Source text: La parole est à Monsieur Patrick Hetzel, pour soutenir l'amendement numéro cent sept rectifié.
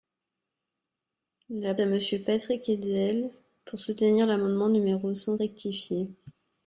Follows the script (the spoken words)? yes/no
no